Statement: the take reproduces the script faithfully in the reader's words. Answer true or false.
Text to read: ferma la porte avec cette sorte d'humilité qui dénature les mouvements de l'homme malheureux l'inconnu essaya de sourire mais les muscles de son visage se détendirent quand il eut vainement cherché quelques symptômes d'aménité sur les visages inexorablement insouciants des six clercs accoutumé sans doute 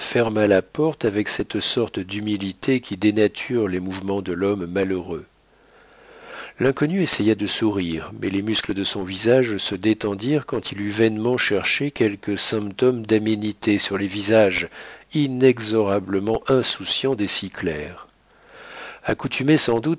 true